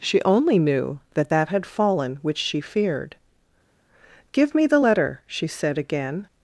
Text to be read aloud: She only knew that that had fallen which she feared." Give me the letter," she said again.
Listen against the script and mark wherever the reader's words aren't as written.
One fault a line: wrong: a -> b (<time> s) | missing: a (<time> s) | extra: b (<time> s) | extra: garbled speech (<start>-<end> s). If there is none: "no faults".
no faults